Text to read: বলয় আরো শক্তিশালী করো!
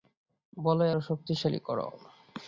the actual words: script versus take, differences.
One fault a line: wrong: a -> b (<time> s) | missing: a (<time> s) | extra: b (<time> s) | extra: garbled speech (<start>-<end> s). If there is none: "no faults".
no faults